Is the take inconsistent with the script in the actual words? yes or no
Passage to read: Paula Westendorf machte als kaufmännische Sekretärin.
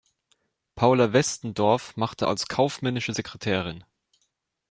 no